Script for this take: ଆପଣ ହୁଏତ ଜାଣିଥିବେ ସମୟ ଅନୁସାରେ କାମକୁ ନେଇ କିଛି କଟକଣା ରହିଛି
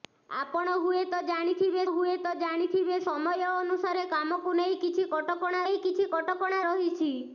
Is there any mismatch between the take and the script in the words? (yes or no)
yes